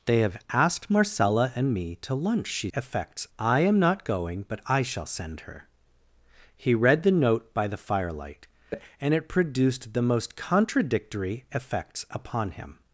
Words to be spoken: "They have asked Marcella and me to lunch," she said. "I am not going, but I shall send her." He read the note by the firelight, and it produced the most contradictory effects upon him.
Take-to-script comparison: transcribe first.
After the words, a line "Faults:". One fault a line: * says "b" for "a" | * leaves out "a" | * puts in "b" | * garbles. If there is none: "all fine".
"They have asked Marcella and me to lunch," she effects. "I am not going, but I shall send her." He read the note by the firelight, and it produced the most contradictory effects upon him.
Faults:
* says "effects" for "said"